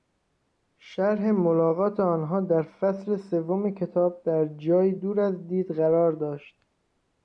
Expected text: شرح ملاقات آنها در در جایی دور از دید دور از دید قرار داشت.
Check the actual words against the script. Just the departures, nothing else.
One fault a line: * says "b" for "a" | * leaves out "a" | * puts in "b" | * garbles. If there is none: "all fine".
* says "فصل سوم کتاب در جایی" for "در جایی دور از دید"